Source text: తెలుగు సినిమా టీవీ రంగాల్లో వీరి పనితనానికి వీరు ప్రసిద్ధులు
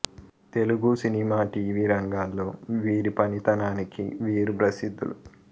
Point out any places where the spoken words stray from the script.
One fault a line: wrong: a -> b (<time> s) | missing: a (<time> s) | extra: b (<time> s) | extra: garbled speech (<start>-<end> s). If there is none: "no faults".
no faults